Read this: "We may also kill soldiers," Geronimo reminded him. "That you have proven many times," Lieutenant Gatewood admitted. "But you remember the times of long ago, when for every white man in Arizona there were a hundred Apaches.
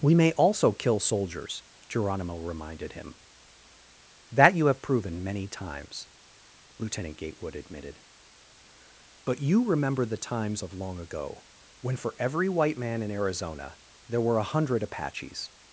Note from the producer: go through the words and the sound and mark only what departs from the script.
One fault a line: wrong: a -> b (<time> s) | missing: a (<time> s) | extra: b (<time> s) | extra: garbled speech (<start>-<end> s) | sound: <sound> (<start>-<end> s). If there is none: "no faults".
no faults